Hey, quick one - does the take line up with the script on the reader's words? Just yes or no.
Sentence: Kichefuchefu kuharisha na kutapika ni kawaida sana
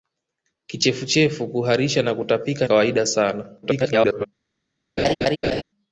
no